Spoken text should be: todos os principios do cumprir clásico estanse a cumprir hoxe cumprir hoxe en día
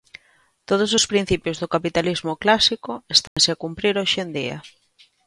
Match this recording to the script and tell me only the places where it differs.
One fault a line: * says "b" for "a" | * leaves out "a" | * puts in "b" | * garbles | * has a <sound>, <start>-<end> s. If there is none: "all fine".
* says "capitalismo" for "cumprir"
* has a dropout, 3.3-3.4 s
* leaves out "cumprir hoxe"